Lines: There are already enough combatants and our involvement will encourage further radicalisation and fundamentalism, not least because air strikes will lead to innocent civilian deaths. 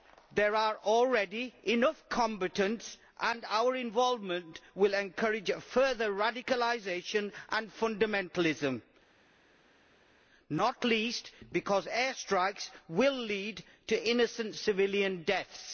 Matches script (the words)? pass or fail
pass